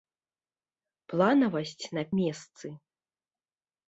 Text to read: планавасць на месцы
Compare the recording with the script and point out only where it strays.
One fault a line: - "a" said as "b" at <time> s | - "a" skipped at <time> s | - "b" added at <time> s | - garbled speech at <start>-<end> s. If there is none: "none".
none